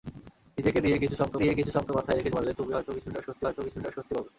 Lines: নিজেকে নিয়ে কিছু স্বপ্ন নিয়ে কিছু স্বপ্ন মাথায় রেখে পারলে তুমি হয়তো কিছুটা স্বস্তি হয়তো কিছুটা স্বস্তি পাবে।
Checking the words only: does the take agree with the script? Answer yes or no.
yes